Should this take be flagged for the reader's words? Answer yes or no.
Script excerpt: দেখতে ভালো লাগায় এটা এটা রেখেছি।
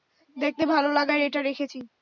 yes